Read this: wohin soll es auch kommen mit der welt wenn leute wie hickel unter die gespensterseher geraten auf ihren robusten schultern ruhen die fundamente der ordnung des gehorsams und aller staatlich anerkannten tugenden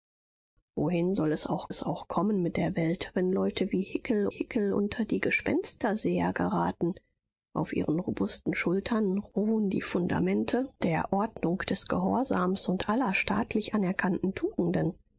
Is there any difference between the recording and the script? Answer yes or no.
yes